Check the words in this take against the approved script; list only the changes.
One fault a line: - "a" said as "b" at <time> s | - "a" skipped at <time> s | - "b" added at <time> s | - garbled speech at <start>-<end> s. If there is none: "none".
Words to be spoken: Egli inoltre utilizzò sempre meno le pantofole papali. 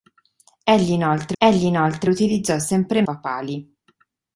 - "egli inoltre" added at 1.4 s
- "meno le pantofole" skipped at 3.0 s